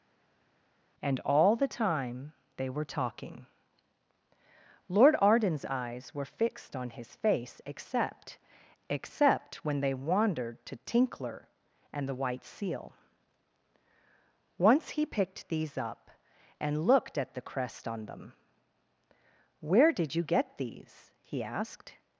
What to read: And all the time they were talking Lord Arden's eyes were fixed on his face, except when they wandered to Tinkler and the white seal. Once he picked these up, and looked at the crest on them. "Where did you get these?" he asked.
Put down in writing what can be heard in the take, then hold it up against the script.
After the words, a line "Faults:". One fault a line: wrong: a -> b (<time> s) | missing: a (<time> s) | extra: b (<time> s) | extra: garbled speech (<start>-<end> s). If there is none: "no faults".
And all the time they were talking Lord Arden's eyes were fixed on his face, except except when they wandered to Tinkler and the white seal. Once he picked these up, and looked at the crest on them. "Where did you get these?" he asked.
Faults:
extra: except (8.9 s)